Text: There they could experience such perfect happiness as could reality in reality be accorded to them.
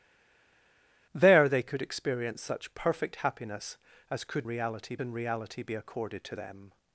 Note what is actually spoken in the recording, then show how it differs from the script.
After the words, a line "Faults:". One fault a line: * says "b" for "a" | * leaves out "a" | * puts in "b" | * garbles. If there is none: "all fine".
There they could experience such perfect happiness as could reality in reality be accorded to them.
Faults:
all fine